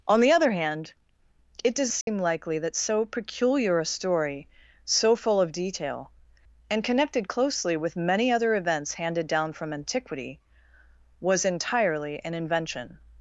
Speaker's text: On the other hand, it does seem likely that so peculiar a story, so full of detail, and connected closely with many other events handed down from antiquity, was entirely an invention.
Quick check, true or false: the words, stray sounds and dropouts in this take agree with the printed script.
false